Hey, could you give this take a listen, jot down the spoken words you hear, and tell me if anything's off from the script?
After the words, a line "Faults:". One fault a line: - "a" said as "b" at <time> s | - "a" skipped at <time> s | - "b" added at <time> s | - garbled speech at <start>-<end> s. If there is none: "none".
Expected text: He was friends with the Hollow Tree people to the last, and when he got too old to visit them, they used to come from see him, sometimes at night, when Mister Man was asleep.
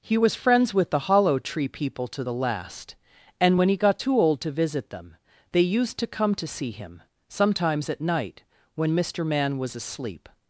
He was friends with the Hollow Tree people to the last, and when he got too old to visit them, they used to come to see him, sometimes at night, when Mister Man was asleep.
Faults:
- "from" said as "to" at 6.4 s